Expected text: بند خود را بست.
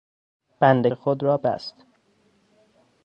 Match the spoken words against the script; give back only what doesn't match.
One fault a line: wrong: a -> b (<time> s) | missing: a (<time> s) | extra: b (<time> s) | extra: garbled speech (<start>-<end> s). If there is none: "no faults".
no faults